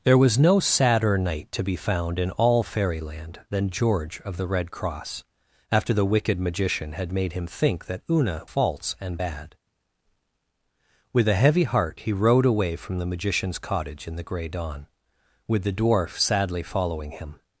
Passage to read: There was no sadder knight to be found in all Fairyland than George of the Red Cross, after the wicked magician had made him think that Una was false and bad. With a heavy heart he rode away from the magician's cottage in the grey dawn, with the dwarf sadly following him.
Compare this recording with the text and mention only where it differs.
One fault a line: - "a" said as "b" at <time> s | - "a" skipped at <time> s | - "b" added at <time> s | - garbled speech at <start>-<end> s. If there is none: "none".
- "was" skipped at 8.4 s